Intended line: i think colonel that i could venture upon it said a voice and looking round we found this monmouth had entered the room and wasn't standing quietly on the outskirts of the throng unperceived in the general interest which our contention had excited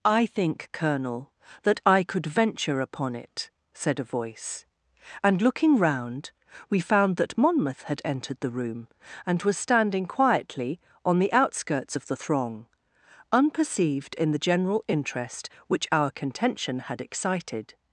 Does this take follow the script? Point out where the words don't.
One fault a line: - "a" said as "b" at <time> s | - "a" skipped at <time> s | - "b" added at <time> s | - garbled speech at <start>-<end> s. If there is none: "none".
- "this" said as "that" at 7.2 s
- "wasn't" said as "was" at 9.4 s